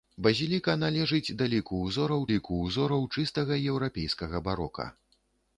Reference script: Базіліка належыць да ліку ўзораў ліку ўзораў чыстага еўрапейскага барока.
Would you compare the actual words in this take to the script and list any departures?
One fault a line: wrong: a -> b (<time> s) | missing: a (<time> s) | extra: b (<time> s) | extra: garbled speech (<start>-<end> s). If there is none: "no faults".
no faults